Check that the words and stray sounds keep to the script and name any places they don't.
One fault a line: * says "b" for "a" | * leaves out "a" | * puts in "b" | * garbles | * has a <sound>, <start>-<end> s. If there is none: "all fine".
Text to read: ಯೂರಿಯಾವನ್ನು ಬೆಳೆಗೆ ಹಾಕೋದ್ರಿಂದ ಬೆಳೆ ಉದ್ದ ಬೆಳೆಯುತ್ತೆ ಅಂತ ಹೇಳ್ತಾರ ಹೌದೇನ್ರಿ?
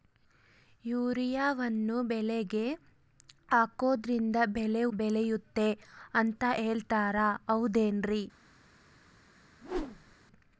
* leaves out "ಉದ್ದ"
* has a whoosh, 9.6-10.2 s